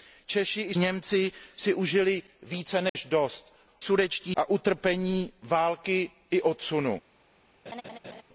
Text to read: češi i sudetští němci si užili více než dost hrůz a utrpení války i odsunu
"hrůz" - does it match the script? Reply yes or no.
no